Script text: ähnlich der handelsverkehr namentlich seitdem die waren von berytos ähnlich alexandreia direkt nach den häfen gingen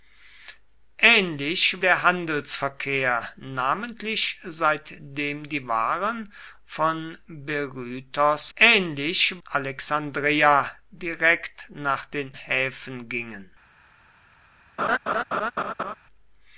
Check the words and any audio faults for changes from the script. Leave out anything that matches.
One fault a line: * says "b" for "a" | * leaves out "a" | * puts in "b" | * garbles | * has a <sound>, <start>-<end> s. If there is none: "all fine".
* has a laugh, 14.8-15.9 s